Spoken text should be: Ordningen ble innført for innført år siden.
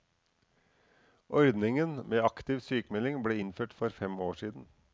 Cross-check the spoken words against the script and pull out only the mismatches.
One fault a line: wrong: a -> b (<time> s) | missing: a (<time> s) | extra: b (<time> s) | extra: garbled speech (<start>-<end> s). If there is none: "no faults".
extra: med aktiv sykmelding (2.1 s)
wrong: innført -> fem (3.9 s)